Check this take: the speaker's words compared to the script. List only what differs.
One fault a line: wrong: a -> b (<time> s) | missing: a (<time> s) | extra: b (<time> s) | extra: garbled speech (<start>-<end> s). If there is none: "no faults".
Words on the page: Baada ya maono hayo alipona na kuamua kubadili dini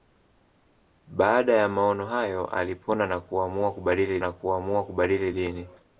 extra: na kuamua kubadili (4.2 s)